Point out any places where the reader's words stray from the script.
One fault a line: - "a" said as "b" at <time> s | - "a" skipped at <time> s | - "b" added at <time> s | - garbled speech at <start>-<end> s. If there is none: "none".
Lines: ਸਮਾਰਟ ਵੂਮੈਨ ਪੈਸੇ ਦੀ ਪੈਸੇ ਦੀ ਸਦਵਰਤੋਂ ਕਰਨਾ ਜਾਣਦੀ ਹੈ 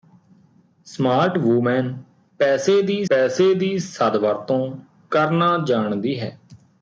none